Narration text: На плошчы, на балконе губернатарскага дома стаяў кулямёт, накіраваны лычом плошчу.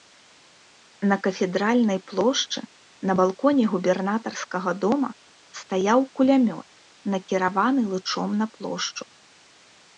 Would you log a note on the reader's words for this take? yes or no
yes